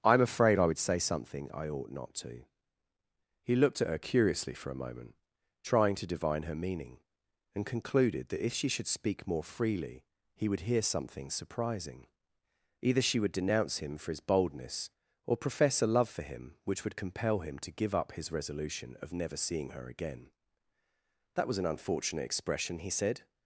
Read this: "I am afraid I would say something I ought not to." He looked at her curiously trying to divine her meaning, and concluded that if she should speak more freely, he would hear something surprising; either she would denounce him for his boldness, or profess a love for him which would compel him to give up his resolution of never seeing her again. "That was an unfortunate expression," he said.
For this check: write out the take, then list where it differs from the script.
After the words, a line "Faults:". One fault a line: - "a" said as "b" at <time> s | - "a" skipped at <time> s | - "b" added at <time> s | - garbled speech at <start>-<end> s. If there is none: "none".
"I am afraid I would say something I ought not to." He looked at her curiously for a moment, trying to divine her meaning, and concluded that if she should speak more freely, he would hear something surprising; either she would denounce him for his boldness, or profess a love for him which would compel him to give up his resolution of never seeing her again. "That was an unfortunate expression," he said.
Faults:
- "for a moment" added at 4.5 s